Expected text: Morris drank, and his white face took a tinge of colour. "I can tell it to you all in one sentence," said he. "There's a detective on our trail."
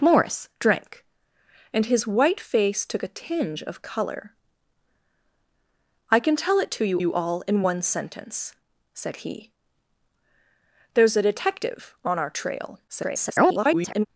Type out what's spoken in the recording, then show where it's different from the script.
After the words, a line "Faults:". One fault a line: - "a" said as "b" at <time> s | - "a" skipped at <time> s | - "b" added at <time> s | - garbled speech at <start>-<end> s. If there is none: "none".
Morris drank, and his white face took a tinge of colour. "I can tell it to you you all in one sentence," said he. "There's a detective on our trail." [garbled]
Faults:
- "you" added at 7.0 s
- garbled speech at 12.9-14.1 s